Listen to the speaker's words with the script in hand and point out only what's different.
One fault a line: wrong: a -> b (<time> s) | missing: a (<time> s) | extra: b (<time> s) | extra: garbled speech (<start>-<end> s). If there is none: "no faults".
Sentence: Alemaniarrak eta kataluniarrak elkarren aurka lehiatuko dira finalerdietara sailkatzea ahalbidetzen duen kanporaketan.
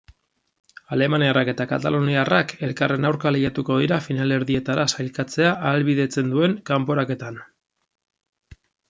no faults